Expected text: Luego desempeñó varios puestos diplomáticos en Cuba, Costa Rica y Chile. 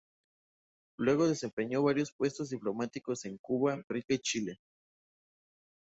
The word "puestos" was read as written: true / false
true